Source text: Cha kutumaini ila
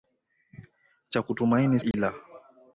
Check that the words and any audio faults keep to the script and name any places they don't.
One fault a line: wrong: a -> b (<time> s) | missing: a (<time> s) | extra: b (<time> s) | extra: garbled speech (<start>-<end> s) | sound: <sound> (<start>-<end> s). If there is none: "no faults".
sound: dropout (1.9-1.9 s)